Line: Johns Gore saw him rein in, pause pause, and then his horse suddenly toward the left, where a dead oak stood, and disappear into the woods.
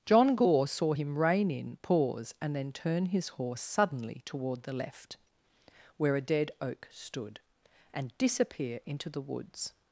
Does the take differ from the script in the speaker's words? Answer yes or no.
yes